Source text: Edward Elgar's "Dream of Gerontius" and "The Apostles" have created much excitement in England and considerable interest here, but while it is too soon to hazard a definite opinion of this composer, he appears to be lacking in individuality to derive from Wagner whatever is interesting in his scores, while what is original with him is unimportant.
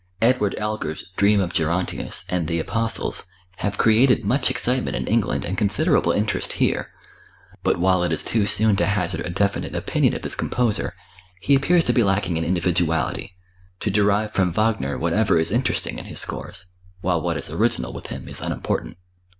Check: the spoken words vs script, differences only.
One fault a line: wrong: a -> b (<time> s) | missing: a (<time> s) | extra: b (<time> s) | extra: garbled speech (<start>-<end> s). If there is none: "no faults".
no faults